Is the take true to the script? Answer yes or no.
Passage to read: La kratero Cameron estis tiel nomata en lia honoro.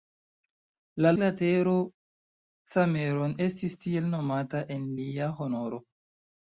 yes